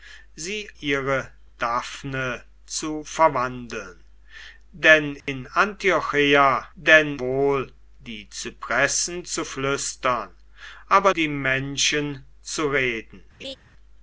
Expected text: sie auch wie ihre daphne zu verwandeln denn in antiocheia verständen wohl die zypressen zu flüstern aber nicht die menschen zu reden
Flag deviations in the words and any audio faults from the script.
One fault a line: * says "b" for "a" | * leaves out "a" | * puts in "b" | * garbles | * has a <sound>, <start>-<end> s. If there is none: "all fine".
* leaves out "auch wie"
* has a dropout, 5.2-5.3 s
* says "denn" for "verständen"
* leaves out "nicht"
* has a laugh, 13.4-13.6 s